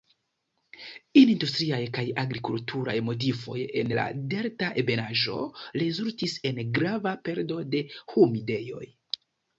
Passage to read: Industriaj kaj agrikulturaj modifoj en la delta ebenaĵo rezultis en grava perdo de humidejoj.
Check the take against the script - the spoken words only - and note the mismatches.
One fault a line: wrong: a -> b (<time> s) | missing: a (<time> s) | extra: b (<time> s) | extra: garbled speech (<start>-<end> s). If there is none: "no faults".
no faults